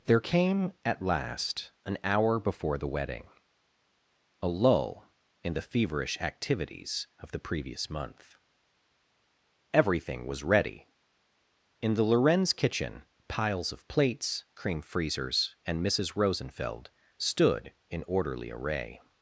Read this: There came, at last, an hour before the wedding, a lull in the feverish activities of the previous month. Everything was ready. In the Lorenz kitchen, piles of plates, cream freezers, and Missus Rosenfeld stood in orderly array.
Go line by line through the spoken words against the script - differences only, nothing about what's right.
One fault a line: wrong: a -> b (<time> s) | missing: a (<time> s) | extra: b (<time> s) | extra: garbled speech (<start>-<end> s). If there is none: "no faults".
no faults